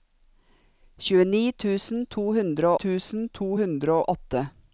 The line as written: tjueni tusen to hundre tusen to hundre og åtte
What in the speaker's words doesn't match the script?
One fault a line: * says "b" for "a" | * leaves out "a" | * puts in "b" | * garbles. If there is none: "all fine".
all fine